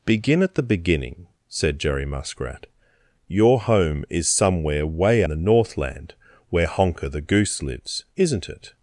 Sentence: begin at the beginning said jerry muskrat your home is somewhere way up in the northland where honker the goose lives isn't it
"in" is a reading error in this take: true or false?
true